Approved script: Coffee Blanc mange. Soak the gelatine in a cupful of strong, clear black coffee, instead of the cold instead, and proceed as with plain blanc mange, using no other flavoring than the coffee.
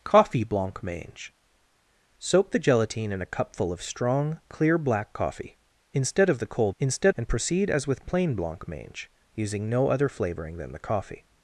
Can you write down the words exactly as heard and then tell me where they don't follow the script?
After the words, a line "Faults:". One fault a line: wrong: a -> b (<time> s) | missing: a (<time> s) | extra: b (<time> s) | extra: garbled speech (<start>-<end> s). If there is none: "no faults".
Coffee Blanc mange. Soak the gelatine in a cupful of strong, clear black coffee, instead of the cold instead, and proceed as with plain blanc mange, using no other flavoring than the coffee.
Faults:
no faults